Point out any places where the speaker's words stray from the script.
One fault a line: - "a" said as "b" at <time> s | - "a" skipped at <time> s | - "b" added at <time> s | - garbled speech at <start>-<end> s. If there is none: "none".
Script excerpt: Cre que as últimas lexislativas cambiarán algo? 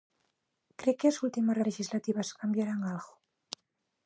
none